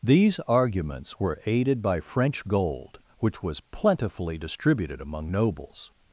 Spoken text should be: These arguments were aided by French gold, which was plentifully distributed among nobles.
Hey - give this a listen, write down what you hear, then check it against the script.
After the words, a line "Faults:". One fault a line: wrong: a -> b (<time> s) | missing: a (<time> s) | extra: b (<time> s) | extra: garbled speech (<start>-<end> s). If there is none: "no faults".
These arguments were aided by French gold, which was plentifully distributed among nobles.
Faults:
no faults